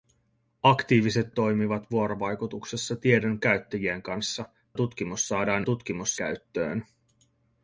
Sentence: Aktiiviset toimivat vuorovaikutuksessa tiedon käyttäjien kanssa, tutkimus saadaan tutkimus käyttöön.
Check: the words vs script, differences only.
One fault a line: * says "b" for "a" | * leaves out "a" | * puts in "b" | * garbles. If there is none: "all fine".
all fine